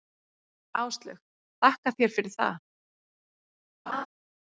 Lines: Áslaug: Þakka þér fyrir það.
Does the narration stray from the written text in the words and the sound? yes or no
yes